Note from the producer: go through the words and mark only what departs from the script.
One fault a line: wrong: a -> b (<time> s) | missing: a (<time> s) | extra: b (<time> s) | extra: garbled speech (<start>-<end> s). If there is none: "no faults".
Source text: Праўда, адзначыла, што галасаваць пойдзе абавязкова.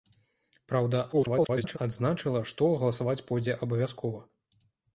extra: garbled speech (1.1-1.8 s)